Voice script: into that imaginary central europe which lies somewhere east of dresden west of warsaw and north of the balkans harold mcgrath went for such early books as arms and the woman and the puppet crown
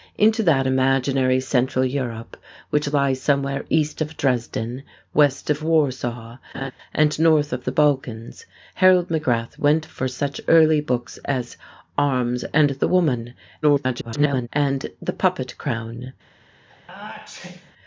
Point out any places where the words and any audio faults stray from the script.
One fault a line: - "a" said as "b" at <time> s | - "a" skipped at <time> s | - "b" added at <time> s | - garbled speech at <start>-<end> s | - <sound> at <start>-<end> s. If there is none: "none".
- laugh at 6.5-6.7 s
- garbled speech at 13.6-14.5 s
- sneeze at 16.7-17.7 s